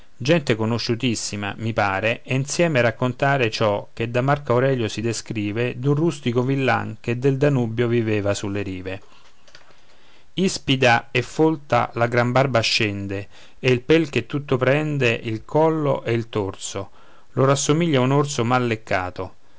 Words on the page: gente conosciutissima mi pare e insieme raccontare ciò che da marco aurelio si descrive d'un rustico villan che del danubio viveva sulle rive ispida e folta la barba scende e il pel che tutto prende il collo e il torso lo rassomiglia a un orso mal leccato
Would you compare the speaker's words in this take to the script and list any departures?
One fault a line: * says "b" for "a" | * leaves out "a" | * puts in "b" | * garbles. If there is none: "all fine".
* puts in "gran"